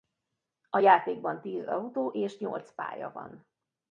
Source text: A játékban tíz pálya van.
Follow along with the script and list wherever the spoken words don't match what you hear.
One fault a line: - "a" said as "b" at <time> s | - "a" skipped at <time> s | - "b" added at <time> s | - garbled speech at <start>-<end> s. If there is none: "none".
- "autó és nyolc" added at 1.7 s